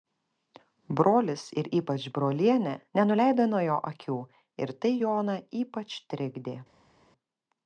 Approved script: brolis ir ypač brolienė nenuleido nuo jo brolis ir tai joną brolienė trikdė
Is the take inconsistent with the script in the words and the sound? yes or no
yes